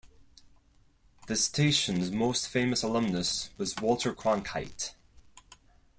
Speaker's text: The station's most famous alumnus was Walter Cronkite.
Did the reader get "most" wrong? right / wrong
right